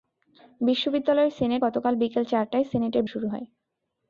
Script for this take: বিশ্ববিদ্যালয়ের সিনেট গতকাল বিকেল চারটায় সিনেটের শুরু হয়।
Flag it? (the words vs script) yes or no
no